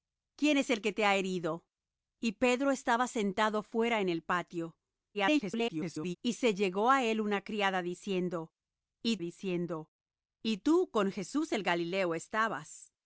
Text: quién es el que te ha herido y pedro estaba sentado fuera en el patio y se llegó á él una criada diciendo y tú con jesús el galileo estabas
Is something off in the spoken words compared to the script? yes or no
yes